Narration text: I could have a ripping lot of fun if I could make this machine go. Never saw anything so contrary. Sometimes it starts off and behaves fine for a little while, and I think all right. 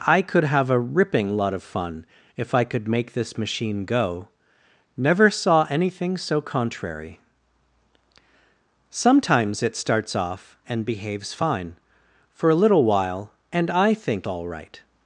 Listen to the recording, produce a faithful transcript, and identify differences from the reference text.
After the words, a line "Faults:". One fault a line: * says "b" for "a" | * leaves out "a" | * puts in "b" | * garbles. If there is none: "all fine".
I could have a ripping lot of fun if I could make this machine go. Never saw anything so contrary. Sometimes it starts off and behaves fine for a little while, and I think all right.
Faults:
all fine